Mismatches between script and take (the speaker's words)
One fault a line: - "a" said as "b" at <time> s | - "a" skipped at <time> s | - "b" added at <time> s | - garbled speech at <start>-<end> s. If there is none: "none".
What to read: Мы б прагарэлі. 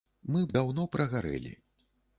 - "даўно" added at 0.6 s